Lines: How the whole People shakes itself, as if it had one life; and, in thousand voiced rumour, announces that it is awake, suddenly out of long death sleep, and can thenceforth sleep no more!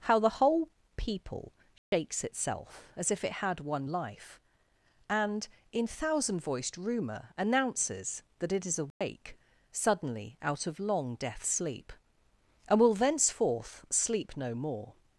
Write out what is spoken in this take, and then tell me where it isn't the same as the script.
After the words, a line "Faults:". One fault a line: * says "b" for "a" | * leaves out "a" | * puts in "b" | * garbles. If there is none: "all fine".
How the whole People shakes itself, as if it had one life; and, in thousand voiced rumour, announces that it is awake, suddenly out of long death sleep, and will thenceforth sleep no more!
Faults:
* says "will" for "can"